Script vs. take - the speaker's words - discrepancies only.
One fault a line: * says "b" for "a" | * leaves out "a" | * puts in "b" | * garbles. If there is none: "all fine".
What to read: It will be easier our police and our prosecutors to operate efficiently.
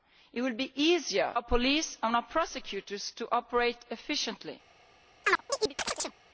all fine